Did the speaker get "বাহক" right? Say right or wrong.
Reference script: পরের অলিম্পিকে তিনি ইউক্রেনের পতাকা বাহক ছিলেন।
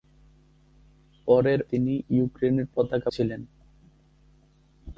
wrong